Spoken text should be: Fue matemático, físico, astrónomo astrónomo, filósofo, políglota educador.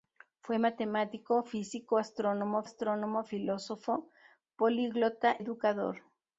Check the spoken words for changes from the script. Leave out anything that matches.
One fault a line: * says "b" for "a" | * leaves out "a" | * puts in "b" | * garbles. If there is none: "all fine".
all fine